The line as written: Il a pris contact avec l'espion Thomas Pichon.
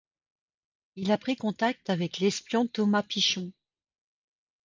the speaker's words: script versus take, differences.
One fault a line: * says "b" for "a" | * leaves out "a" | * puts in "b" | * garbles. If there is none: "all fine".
all fine